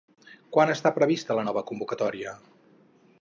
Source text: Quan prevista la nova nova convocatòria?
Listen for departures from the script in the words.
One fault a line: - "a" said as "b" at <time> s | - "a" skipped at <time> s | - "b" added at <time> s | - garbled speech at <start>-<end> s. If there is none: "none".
- "està" added at 0.8 s
- "nova" skipped at 1.6 s